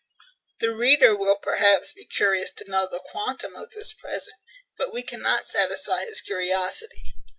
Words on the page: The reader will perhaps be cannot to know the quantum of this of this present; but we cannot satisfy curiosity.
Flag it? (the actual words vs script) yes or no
yes